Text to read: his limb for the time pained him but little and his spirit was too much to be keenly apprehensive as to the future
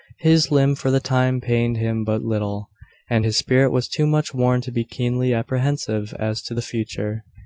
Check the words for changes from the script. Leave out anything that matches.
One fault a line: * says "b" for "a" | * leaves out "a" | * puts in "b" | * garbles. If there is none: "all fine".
* puts in "worn"